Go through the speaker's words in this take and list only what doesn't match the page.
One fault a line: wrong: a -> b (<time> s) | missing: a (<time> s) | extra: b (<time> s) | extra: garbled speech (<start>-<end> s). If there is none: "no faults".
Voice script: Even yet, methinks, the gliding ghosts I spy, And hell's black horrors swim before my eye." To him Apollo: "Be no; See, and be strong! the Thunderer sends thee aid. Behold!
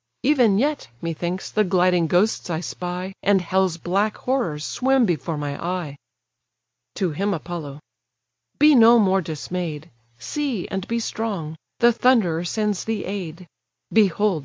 extra: more dismay'd (9.0 s)